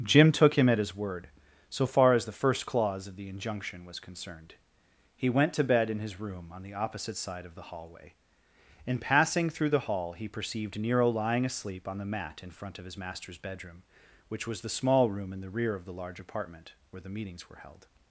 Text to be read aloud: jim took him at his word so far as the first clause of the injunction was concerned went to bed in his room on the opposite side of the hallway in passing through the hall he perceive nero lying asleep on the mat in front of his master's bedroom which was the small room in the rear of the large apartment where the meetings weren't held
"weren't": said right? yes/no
no